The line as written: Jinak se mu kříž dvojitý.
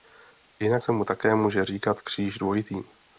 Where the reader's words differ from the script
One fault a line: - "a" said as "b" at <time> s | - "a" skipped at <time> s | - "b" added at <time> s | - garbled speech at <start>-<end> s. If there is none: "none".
- "také může říkat" added at 1.0 s